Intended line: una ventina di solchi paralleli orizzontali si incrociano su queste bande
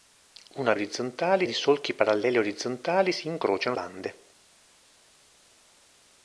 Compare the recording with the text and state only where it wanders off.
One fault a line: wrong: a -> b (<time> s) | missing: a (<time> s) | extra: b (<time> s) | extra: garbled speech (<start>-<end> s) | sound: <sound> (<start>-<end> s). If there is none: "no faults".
wrong: ventina -> orizzontali (0.7 s)
missing: su queste (3.8 s)